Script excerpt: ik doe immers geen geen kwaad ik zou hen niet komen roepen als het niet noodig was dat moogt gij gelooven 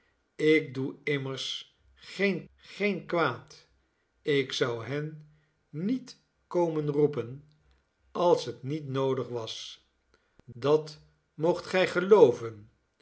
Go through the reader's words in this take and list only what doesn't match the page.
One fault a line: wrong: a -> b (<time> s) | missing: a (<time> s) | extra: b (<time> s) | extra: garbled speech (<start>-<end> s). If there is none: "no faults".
no faults